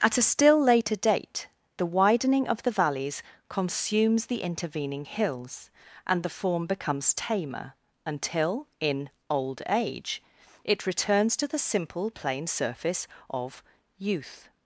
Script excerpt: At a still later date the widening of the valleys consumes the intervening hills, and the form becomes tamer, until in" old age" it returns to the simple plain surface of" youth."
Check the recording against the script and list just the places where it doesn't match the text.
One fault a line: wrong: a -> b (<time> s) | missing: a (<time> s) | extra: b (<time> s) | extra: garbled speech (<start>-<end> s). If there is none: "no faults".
no faults